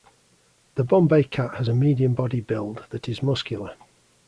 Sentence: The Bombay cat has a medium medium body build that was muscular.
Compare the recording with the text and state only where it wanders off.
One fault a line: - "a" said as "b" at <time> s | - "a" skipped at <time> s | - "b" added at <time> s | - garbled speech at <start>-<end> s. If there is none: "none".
- "medium" skipped at 2.1 s
- "was" said as "is" at 3.1 s